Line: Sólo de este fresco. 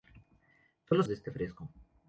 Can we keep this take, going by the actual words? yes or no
yes